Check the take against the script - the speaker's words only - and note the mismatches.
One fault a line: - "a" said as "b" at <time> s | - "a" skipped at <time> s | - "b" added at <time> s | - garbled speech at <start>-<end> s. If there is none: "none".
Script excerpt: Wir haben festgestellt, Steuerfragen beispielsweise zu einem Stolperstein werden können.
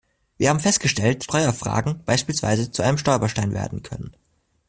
none